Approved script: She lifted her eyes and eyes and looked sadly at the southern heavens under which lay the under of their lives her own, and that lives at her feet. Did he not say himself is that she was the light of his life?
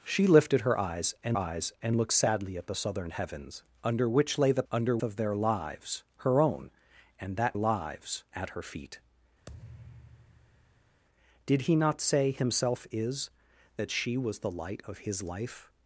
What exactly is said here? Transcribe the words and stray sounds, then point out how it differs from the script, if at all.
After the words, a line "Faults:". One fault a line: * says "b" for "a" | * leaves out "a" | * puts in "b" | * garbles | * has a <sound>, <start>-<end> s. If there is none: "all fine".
She lifted her eyes and eyes and looked sadly at the southern heavens under which lay the under of their lives her own, and that lives at her feet. Did he not say himself is that she was the light of his life?
Faults:
* has a thud, 9.5-11.0 s